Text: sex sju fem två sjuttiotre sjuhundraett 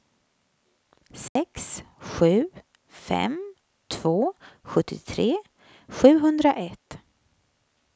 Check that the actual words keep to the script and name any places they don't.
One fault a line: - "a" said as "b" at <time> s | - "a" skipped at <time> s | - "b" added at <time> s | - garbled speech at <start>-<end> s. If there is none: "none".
none